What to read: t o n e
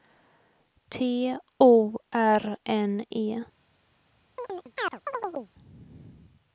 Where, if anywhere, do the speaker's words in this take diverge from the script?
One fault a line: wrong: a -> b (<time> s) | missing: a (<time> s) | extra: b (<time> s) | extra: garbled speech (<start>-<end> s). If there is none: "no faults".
extra: r (2.1 s)